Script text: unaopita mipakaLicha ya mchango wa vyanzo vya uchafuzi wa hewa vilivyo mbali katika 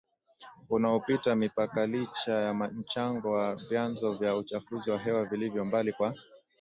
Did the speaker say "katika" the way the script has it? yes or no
no